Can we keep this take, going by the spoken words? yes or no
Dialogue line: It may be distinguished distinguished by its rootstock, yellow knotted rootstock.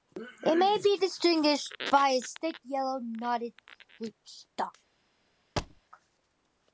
no